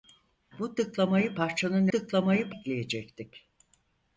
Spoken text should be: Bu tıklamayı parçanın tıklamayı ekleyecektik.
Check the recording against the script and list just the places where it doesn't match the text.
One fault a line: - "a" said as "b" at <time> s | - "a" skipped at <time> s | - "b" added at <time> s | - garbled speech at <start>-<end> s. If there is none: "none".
none